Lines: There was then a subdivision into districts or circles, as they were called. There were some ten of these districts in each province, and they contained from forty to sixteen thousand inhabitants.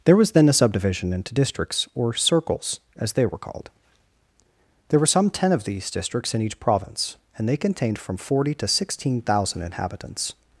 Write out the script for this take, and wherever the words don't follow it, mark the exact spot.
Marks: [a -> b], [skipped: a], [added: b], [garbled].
There was then a subdivision into districts or circles, as they were called. There were some ten of these districts in each province, and they contained from forty to sixteen thousand inhabitants.